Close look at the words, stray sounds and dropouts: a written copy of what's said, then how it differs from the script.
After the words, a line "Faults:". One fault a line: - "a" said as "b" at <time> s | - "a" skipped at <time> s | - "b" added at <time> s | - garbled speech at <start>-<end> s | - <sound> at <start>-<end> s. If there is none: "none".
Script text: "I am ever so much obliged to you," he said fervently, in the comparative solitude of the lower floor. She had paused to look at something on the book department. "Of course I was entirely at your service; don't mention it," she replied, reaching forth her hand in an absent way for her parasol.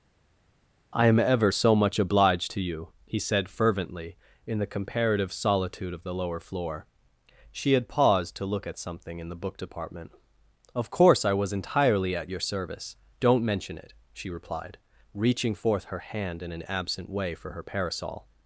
"I am ever so much obliged to you," he said fervently, in the comparative solitude of the lower floor. She had paused to look at something in the book department. "Of course I was entirely at your service; don't mention it," she replied, reaching forth her hand in an absent way for her parasol.
Faults:
- "on" said as "in" at 9.2 s